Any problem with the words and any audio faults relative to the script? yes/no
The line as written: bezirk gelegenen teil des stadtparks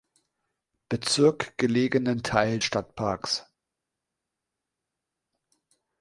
yes